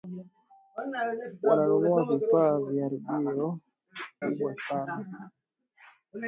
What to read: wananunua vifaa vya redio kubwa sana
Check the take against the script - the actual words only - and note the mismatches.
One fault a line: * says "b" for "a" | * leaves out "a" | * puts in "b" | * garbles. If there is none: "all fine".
all fine